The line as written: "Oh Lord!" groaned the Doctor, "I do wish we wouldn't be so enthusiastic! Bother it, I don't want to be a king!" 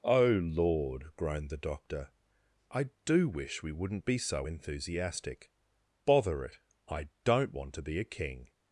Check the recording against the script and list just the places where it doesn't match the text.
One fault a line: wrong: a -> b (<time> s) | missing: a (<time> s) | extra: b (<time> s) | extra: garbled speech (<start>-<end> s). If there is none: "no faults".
no faults